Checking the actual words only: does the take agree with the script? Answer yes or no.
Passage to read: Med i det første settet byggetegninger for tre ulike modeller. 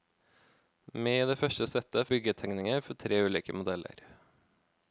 yes